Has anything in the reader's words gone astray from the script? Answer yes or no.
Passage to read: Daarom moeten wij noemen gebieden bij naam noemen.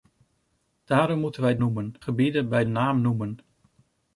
no